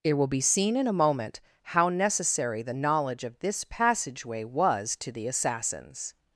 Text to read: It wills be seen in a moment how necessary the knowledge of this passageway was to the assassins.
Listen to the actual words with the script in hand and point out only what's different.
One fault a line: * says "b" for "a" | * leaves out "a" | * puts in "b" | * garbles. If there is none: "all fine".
* says "will" for "wills"